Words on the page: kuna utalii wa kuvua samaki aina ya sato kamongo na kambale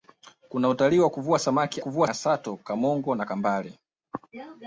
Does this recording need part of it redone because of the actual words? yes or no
yes